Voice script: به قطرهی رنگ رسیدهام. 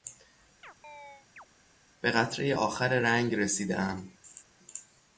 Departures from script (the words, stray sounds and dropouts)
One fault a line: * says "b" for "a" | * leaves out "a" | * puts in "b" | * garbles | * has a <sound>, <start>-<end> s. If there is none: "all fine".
* has a chirp, 0.6-1.5 s
* puts in "آخر"
* has a laugh, 4.2-4.4 s